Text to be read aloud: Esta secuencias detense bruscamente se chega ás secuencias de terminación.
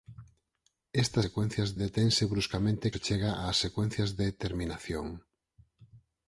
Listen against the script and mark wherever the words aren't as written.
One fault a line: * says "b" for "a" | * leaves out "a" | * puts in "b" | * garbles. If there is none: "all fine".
all fine